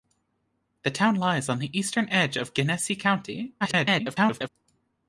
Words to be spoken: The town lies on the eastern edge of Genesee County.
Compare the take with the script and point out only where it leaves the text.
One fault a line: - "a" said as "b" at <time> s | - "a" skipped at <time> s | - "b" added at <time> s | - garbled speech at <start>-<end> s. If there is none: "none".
- garbled speech at 3.6-4.5 s